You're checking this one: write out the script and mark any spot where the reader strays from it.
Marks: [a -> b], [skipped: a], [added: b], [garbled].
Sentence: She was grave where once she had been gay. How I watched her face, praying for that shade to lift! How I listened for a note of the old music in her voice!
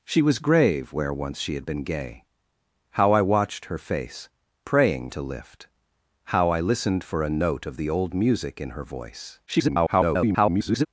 She was grave where once she had been gay. How I watched her face, praying [skipped: for that shade] to lift! How I listened for a note of the old music in her voice! [garbled]